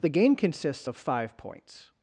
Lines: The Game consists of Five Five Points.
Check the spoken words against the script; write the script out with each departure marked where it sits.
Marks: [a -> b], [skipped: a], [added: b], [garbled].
The Game consists of Five [skipped: Five] Points.